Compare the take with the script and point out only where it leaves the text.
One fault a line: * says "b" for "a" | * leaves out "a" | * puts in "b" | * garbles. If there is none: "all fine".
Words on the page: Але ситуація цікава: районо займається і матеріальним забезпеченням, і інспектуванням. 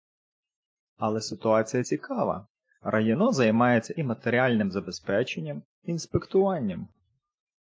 all fine